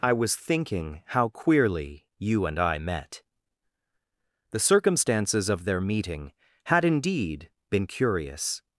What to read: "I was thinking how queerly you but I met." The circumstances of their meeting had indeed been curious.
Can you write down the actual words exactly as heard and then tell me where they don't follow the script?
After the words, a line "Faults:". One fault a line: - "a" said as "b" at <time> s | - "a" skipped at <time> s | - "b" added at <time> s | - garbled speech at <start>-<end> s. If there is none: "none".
"I was thinking how queerly you and I met." The circumstances of their meeting had indeed been curious.
Faults:
- "but" said as "and" at 2.5 s